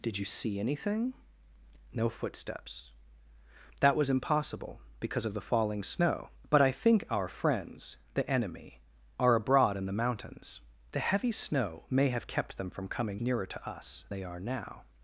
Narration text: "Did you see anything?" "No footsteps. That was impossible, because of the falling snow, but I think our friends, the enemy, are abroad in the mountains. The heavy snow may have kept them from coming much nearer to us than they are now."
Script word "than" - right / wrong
wrong